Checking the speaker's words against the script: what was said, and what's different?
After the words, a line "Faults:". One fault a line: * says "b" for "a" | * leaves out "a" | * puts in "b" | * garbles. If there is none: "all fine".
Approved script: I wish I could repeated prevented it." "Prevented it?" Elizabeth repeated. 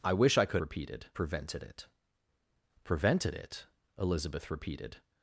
I wish I could repeated prevented it." "Prevented it?" Elizabeth repeated.
Faults:
all fine